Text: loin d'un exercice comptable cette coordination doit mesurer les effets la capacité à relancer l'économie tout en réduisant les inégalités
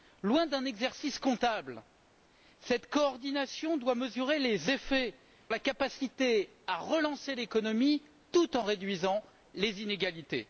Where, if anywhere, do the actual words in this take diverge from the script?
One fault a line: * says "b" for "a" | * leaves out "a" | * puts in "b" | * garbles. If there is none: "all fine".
all fine